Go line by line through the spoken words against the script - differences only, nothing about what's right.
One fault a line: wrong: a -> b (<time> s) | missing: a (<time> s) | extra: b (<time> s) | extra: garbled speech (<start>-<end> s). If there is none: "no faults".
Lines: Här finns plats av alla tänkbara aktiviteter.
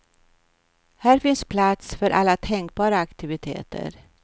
wrong: av -> för (1.9 s)